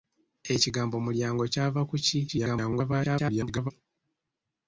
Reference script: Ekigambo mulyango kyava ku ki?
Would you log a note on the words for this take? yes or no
yes